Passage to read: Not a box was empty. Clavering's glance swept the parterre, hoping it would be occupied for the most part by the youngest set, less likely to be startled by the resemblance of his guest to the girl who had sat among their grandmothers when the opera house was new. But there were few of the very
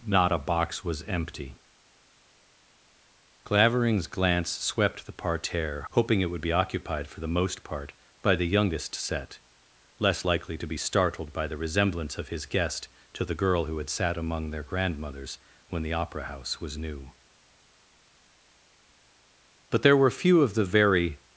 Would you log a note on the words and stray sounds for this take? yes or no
no